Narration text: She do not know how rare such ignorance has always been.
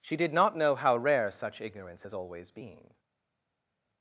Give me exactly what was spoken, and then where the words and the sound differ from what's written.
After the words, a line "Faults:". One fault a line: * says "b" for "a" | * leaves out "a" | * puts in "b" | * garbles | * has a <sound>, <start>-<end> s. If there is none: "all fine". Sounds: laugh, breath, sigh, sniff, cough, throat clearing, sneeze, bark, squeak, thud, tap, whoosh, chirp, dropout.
She did not know how rare such ignorance has always been.
Faults:
* says "did" for "do"